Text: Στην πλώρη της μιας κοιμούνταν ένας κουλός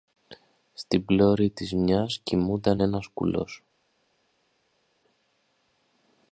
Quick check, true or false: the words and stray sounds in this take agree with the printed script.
true